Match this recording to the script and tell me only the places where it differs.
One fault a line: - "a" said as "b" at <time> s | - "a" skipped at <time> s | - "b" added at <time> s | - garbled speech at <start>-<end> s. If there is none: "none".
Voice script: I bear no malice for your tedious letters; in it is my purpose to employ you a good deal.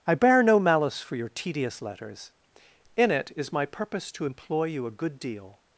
none